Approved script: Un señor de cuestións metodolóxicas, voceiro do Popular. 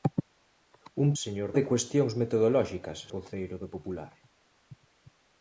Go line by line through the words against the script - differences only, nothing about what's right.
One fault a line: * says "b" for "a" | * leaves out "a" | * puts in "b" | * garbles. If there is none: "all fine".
all fine